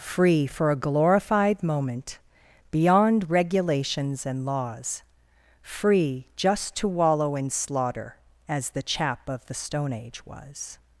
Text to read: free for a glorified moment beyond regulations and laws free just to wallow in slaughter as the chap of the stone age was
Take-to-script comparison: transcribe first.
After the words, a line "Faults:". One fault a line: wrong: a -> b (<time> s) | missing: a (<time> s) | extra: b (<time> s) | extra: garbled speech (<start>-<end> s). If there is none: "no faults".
free for a glorified moment beyond regulations and laws free just to wallow in slaughter as the chap of the stone age was
Faults:
no faults